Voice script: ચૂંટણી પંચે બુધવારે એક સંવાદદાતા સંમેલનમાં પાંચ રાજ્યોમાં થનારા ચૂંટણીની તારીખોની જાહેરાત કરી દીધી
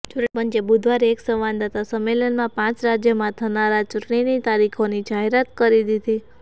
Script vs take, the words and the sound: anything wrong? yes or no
no